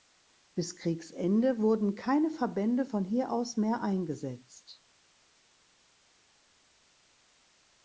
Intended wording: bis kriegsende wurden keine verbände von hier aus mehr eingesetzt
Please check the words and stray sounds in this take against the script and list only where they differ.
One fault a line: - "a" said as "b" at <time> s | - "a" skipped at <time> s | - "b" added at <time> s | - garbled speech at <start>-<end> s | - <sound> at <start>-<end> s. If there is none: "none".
none